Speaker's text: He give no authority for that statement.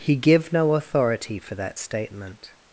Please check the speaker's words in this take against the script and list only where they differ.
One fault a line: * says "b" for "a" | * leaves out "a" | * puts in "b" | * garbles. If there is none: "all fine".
all fine